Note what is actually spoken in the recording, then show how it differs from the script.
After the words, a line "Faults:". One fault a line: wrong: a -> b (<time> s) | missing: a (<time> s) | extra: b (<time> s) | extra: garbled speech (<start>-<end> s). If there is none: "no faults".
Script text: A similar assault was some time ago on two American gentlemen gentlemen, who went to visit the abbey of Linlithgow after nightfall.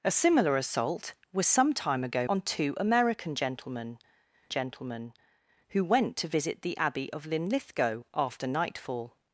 A similar assault was some time ago on two American gentlemen gentlemen, who went to visit the abbey of Linlithgow after nightfall.
Faults:
no faults